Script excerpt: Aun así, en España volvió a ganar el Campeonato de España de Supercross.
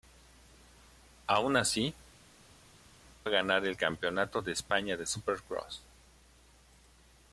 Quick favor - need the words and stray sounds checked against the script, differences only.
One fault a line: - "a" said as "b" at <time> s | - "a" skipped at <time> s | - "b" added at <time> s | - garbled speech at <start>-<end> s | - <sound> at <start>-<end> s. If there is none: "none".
- "en España volvió" skipped at 1.9 s